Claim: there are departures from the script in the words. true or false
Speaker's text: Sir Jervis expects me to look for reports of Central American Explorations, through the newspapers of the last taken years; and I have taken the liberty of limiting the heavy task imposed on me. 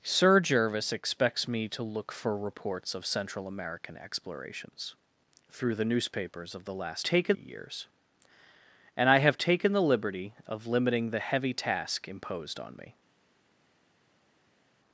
false